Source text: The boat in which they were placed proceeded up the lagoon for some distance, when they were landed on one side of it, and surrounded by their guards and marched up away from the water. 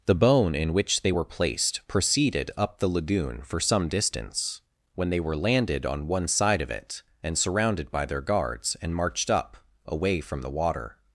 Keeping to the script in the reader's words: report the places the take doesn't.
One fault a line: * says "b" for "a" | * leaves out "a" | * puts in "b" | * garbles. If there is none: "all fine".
* says "bone" for "boat"